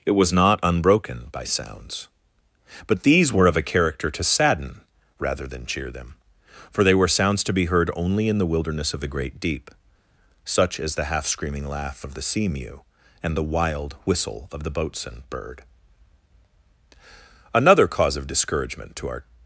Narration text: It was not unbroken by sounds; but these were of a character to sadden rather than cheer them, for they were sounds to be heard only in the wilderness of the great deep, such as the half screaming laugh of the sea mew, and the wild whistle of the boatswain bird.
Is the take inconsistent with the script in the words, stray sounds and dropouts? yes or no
yes